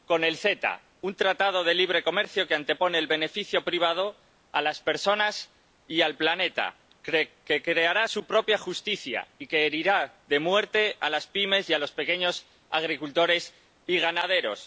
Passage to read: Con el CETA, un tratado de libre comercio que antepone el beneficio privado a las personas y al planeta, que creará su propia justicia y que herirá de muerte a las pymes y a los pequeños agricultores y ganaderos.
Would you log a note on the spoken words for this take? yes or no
no